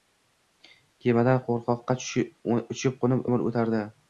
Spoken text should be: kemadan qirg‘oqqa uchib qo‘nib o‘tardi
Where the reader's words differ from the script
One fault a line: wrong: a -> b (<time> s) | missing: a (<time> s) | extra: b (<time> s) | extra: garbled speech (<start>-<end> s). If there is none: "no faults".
extra: umr (3.3 s)